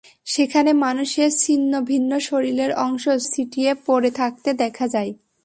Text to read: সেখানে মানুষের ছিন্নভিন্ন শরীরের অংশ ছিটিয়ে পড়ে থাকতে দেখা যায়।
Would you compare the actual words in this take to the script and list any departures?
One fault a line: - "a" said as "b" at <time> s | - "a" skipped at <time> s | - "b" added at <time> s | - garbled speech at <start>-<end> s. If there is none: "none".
none